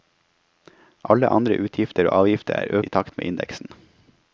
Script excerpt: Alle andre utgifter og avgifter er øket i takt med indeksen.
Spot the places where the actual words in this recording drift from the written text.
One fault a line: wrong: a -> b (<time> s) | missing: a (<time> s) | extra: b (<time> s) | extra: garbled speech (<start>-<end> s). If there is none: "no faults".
missing: øket (2.8 s)